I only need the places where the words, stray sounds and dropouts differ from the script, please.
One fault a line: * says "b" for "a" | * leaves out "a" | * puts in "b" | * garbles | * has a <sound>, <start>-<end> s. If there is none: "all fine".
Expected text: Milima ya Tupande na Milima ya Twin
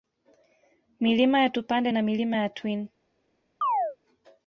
* has a chirp, 3.6-4.0 s